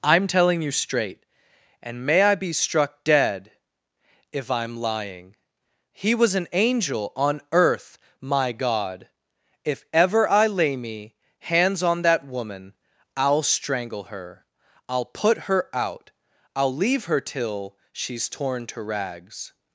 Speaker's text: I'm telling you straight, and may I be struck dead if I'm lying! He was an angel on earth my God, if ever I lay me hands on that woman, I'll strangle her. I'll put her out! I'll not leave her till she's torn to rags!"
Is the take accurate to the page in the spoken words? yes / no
no